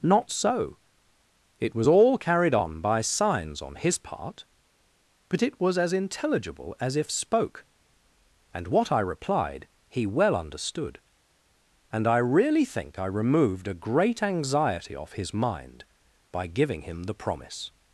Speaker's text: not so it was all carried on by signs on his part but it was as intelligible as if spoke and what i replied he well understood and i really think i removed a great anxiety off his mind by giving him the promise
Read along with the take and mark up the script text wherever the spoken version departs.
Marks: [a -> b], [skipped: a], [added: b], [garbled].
not so it was all carried on by signs on his part but it was as intelligible as if spoke and what i replied he well understood and i really think i removed a great anxiety off his mind by giving him the promise